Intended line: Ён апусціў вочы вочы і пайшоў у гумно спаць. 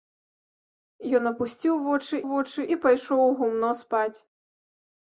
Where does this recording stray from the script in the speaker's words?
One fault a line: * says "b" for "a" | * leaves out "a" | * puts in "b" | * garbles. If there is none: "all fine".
all fine